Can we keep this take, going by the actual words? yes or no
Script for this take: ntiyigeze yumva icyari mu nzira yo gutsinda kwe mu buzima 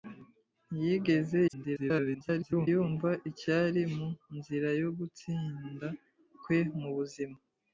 no